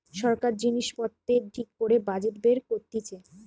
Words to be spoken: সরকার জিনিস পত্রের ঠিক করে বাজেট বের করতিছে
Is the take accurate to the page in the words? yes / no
yes